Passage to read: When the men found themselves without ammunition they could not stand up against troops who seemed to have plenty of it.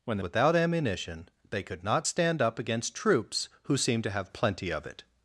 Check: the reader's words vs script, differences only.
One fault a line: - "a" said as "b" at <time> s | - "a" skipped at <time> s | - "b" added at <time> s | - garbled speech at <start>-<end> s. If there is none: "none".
- "men found themselves" skipped at 0.2 s